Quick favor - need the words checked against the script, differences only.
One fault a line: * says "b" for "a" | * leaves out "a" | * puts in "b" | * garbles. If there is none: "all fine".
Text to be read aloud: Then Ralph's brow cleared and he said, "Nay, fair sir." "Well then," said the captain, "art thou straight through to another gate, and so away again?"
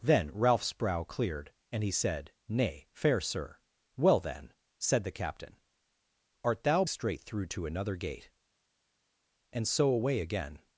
all fine